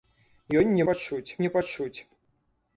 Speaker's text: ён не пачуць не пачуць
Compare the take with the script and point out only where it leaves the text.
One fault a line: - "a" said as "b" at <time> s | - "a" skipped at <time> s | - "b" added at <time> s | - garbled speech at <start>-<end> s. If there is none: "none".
none